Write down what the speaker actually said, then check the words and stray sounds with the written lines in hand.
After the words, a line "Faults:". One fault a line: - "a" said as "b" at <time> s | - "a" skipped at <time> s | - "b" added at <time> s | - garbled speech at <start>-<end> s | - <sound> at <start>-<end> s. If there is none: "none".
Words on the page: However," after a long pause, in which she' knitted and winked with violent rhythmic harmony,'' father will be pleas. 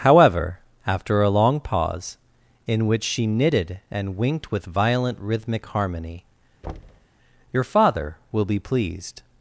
However," after a long pause, in which she' knitted and winked with violent rhythmic harmony,'' your father will be pleased.
Faults:
- thud at 6.6-7.1 s
- "your" added at 7.5 s
- "pleas" said as "pleased" at 8.6 s